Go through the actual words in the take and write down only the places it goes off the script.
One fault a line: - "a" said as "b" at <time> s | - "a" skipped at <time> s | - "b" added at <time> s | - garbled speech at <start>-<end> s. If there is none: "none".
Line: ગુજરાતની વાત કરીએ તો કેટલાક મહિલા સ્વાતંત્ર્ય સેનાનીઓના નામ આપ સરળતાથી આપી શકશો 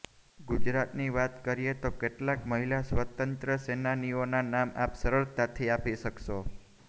none